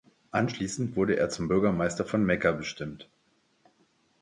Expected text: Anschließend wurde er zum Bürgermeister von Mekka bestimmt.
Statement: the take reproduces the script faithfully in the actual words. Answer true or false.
true